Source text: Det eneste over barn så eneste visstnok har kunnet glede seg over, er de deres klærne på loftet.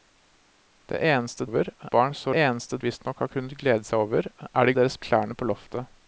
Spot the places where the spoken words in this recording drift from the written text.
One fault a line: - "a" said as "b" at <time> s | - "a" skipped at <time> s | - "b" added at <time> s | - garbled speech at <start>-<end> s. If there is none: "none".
none